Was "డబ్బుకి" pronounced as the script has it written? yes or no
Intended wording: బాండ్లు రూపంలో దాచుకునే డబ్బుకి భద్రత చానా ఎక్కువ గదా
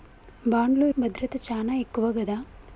no